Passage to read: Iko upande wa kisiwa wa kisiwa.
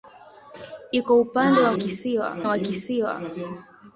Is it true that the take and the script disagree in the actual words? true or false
false